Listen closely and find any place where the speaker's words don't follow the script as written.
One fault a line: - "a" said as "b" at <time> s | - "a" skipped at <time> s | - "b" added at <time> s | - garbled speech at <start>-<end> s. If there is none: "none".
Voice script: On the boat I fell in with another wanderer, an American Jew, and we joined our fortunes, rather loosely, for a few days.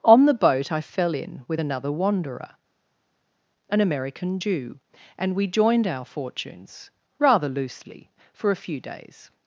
none